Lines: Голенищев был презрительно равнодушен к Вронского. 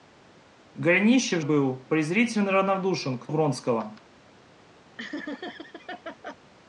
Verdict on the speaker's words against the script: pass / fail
pass